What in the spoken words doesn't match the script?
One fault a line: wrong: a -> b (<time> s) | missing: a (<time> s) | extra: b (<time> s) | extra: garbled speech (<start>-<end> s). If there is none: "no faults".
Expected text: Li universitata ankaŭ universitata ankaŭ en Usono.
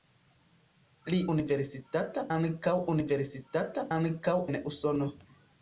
no faults